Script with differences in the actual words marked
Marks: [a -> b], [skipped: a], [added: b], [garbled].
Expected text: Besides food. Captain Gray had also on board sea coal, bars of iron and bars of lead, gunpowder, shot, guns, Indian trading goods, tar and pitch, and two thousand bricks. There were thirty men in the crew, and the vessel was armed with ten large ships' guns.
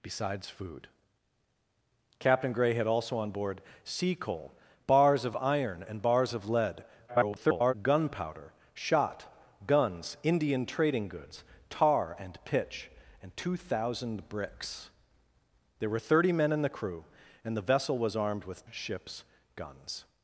Besides food. Captain Gray had also on board sea coal, bars of iron and bars of lead, [garbled] gunpowder, shot, guns, Indian trading goods, tar and pitch, and two thousand bricks. There were thirty men in the crew, and the vessel was armed with [skipped: ten large] ships' guns.